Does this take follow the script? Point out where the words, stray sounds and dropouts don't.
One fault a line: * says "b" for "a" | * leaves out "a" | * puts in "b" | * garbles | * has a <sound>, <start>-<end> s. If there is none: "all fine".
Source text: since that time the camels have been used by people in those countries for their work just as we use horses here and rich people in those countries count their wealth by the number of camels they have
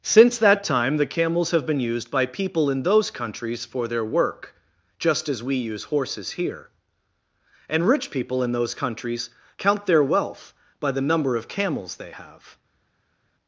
all fine